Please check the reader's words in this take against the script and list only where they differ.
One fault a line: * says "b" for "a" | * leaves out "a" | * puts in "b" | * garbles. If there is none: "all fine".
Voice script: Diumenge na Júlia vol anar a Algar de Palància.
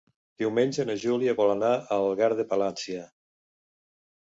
all fine